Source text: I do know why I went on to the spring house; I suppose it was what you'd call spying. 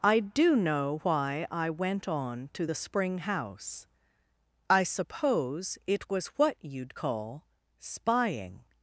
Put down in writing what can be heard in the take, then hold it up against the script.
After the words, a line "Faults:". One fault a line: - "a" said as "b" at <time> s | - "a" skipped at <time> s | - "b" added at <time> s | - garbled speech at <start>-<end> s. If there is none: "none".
I do know why I went on to the spring house; I suppose it was what you'd call spying.
Faults:
none